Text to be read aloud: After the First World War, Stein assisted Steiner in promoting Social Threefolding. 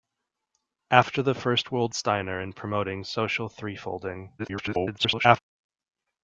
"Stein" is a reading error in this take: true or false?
true